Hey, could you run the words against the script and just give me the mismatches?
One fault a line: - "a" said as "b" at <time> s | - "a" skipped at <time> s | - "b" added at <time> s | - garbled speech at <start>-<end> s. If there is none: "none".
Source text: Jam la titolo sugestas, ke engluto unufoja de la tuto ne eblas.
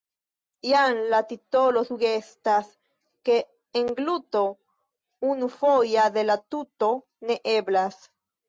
none